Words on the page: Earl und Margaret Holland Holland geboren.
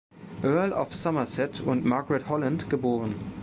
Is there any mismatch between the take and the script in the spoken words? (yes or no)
yes